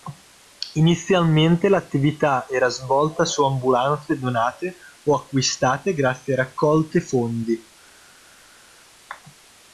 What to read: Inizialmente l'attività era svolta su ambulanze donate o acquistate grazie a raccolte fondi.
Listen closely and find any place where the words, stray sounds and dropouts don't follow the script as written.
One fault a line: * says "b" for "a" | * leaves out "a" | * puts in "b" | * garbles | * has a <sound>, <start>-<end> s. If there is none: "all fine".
all fine